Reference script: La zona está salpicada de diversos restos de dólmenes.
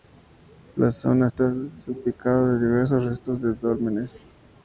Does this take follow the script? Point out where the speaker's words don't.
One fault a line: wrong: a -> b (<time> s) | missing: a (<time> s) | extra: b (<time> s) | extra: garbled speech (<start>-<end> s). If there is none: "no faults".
no faults